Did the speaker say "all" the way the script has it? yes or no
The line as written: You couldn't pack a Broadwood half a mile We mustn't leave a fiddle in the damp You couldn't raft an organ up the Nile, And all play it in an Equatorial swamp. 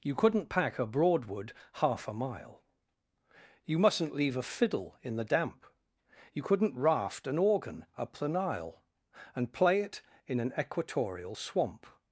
no